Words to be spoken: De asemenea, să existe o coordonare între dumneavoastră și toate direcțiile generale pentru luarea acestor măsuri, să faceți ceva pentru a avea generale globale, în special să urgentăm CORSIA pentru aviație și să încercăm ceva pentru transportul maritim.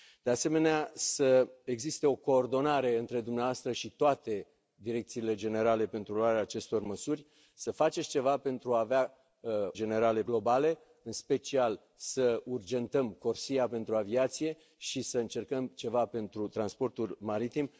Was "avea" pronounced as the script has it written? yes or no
yes